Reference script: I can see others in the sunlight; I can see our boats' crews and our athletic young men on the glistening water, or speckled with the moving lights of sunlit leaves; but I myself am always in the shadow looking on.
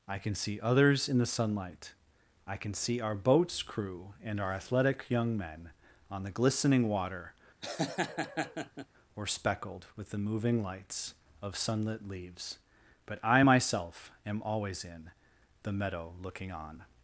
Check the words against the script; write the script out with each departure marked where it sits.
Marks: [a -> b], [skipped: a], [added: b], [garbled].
I can see others in the sunlight; I can see our boats' [crews -> crew] and our athletic young men on the glistening water, or speckled with the moving lights of sunlit leaves; but I myself am always in the [shadow -> meadow] looking on.